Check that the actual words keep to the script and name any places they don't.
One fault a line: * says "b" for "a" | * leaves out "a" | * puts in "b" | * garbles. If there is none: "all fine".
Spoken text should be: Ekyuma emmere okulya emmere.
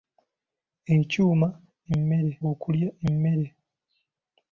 all fine